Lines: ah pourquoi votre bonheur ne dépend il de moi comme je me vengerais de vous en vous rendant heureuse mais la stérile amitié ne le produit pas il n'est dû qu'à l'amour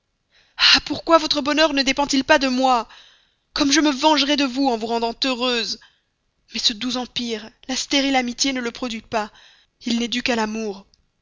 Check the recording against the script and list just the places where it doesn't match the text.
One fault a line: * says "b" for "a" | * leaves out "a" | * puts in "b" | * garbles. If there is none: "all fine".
* puts in "pas"
* puts in "ce doux empire"